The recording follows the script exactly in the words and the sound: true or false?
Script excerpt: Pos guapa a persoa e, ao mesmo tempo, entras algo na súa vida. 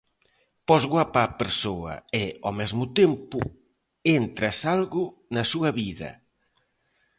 true